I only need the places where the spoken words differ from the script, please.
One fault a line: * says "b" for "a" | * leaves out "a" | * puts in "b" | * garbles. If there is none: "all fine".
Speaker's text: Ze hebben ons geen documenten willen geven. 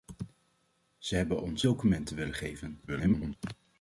* leaves out "geen"
* garbles